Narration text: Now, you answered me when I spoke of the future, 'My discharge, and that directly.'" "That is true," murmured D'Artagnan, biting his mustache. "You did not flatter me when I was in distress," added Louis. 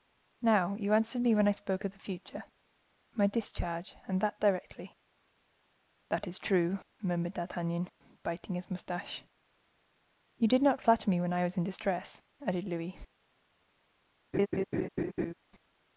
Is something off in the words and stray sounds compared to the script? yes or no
yes